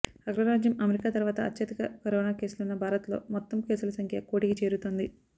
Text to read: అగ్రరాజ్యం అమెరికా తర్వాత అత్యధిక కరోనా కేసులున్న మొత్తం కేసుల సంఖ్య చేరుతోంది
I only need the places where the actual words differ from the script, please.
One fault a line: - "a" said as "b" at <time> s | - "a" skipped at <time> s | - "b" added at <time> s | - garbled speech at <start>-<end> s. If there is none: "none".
- "భారత్లో" added at 2.8 s
- "కోటికి" added at 4.3 s